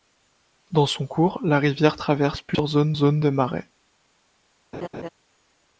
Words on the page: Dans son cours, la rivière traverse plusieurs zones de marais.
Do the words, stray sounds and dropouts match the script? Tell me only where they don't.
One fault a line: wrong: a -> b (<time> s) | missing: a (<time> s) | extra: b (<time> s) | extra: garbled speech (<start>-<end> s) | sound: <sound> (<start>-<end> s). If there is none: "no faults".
extra: zones (2.9 s)
sound: laugh (4.7-5.1 s)